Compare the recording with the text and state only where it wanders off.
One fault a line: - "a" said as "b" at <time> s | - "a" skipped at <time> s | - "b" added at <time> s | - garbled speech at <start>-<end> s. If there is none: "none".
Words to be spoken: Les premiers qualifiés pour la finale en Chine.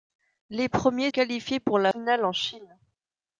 none